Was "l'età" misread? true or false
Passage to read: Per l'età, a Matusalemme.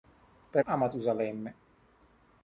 true